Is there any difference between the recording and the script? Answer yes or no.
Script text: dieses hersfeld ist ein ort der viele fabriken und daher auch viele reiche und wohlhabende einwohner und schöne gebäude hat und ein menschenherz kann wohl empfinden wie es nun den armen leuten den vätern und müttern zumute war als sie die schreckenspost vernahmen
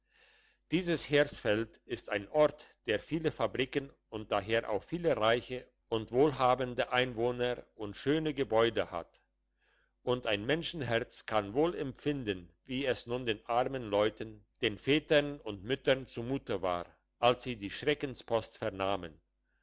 no